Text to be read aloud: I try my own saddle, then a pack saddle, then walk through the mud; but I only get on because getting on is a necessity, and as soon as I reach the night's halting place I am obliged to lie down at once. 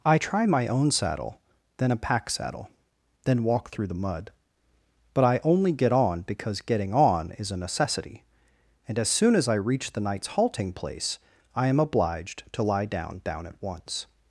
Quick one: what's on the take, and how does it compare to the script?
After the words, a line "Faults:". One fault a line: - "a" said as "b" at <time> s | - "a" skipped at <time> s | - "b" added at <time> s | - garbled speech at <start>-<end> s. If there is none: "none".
I try my own saddle, then a pack saddle, then walk through the mud; but I only get on because getting on is a necessity, and as soon as I reach the night's halting place I am obliged to lie down down at once.
Faults:
- "down" added at 13.2 s